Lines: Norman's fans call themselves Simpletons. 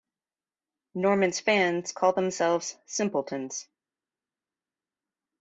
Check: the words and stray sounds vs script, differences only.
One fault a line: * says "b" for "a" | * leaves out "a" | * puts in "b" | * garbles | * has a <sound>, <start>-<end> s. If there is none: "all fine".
all fine